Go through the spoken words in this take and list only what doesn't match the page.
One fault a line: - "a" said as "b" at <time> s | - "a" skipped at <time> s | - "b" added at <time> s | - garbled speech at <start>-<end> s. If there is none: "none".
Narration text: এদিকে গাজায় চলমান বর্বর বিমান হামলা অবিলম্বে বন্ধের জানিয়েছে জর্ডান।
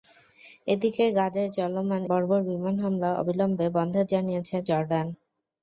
none